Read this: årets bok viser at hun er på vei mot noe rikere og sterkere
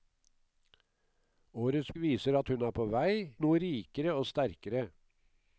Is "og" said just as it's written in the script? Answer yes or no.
yes